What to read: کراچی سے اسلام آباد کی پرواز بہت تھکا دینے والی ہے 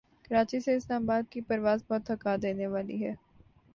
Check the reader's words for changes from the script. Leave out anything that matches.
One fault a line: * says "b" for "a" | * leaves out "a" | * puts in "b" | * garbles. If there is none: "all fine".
all fine